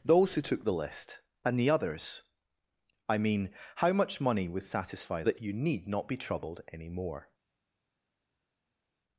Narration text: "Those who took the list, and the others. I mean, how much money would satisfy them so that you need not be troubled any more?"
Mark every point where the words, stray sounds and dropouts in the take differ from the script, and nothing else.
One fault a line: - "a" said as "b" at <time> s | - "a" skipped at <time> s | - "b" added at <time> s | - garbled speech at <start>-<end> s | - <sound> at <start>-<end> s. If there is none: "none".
- "them so" skipped at 5.2 s